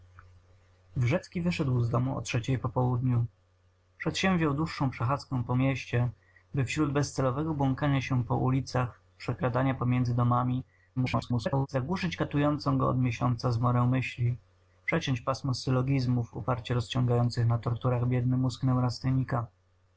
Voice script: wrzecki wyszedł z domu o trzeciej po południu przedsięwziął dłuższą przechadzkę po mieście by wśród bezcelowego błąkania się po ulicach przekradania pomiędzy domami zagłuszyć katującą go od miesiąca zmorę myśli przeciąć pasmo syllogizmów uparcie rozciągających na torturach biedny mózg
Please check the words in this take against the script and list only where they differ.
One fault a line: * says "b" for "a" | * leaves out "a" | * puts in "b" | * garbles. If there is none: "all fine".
* garbles